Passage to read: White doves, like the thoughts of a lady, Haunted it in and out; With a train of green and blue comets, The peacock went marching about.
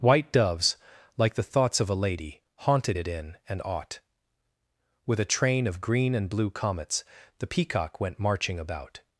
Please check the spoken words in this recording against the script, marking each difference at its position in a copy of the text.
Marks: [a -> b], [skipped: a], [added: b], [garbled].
White doves, like the thoughts of a lady, Haunted it in and [out; -> ought] With a train of green and blue comets, The peacock went marching about.